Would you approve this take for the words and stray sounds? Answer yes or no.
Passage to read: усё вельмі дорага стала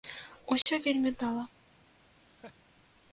no